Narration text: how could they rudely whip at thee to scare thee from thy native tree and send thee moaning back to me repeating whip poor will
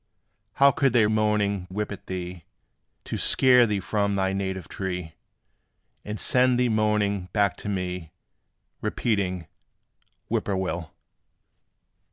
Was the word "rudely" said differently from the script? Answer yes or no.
yes